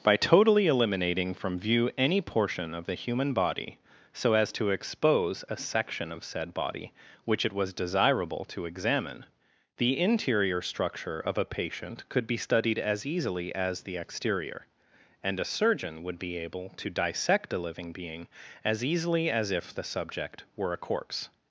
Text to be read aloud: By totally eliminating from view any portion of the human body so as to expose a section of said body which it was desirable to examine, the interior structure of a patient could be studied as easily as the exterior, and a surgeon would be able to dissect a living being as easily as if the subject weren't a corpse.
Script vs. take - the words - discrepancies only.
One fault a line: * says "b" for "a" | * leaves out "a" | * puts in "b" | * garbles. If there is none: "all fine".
* says "were" for "weren't"